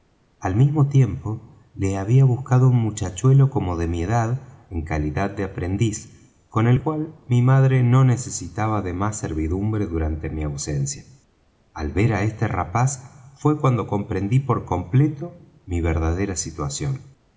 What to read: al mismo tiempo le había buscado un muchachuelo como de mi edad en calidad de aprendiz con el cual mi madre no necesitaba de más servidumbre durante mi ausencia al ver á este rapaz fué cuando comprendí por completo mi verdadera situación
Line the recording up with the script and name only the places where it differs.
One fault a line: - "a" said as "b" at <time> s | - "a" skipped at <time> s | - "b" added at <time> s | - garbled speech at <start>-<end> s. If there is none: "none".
none